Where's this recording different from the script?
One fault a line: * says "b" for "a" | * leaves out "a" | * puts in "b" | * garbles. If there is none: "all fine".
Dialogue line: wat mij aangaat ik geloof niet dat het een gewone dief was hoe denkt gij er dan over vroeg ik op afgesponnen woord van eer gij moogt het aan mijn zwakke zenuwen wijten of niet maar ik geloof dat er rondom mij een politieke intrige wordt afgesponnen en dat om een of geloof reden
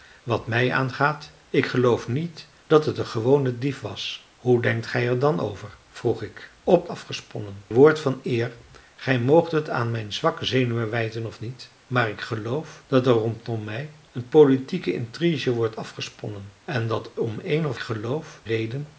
all fine